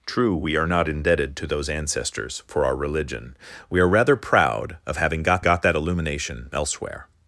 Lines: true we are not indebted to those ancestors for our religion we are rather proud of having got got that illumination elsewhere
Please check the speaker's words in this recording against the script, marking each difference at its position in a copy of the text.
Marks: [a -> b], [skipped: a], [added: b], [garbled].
true we are not indebted to those ancestors for our religion we are rather proud of having got got that illumination elsewhere